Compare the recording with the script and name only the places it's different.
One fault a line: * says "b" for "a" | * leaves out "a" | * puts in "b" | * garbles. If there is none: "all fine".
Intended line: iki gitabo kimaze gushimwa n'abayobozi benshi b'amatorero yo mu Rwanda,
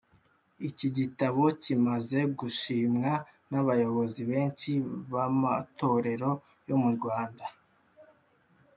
all fine